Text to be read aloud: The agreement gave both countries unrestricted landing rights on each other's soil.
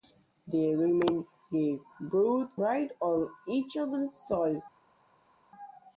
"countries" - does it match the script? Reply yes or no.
no